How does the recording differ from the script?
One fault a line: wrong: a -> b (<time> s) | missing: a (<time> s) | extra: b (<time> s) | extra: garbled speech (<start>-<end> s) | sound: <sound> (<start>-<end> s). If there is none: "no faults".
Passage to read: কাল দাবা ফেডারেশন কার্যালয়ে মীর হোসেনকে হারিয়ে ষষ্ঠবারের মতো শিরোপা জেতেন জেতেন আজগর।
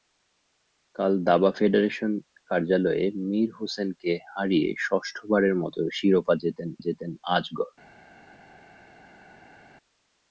no faults